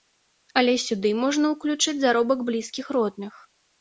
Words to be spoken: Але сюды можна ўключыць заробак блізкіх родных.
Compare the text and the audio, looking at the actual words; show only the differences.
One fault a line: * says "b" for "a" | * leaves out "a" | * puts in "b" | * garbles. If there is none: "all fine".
all fine